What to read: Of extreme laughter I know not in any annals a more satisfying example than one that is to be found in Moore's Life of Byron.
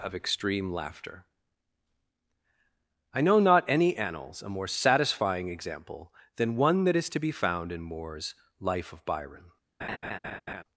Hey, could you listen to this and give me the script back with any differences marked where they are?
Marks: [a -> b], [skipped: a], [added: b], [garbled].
Of extreme laughter I know not [skipped: in] any annals a more satisfying example than one that is to be found in Moore's Life of Byron.